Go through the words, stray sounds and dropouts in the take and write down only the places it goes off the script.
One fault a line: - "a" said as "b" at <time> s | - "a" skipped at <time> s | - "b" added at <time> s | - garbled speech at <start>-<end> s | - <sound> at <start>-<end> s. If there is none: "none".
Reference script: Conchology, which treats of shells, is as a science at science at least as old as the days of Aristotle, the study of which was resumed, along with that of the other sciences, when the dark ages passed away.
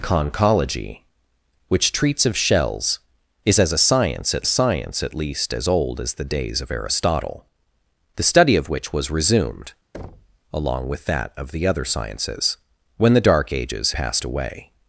- thud at 9.9-10.4 s